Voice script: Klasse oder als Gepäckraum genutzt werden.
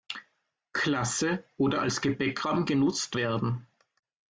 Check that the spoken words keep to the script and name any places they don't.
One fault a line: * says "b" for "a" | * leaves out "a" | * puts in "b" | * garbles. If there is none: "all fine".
all fine